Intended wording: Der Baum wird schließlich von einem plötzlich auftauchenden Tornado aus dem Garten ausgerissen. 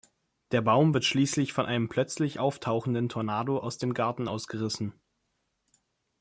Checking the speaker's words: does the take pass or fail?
pass